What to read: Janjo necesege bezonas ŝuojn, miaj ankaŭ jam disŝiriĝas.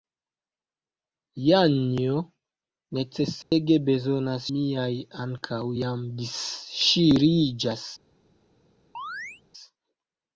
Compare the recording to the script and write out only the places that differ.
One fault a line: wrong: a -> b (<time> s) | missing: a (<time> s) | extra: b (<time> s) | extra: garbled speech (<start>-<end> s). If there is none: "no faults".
missing: ŝuojn (4.5 s)